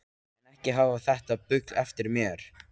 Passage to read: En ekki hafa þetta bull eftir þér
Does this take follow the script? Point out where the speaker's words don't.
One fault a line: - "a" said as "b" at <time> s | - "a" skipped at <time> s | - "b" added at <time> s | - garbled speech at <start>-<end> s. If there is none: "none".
- "þér" said as "mér" at 2.2 s